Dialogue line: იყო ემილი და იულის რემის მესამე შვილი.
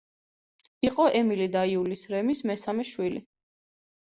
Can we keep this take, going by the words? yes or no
yes